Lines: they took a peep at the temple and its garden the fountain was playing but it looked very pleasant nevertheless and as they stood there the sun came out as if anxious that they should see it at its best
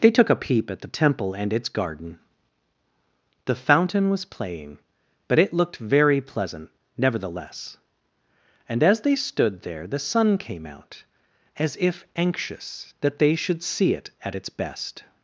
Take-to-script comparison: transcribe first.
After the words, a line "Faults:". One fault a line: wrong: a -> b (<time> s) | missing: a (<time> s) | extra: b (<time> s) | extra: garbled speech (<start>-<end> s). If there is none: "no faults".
they took a peep at the temple and its garden the fountain was playing but it looked very pleasant nevertheless and as they stood there the sun came out as if anxious that they should see it at its best
Faults:
no faults